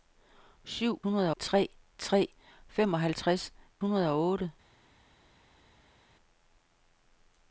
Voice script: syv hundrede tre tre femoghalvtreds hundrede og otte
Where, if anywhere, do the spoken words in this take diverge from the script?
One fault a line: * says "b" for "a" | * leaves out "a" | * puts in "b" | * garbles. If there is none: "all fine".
all fine